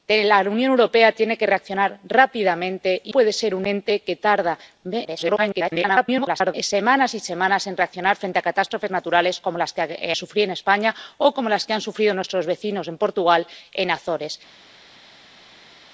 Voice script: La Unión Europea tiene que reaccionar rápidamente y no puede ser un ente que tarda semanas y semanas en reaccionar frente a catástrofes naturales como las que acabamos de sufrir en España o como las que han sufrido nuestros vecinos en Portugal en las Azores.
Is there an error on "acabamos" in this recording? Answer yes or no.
yes